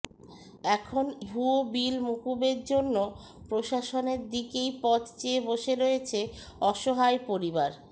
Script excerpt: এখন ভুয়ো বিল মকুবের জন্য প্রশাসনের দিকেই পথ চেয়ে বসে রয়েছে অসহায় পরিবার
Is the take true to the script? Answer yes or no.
yes